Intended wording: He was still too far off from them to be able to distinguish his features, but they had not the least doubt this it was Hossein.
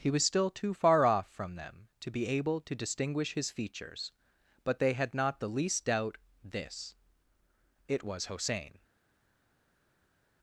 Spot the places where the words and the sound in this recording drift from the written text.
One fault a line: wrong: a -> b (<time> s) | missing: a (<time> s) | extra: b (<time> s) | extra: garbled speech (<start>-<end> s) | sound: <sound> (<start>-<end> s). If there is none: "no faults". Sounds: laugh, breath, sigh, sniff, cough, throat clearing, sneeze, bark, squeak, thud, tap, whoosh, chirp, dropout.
no faults